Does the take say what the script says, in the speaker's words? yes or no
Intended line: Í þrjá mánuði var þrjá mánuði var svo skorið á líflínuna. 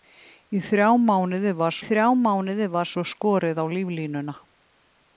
yes